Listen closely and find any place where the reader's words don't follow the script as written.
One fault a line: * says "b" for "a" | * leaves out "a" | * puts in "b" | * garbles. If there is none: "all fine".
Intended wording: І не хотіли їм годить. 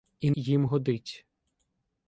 * leaves out "не хотіли"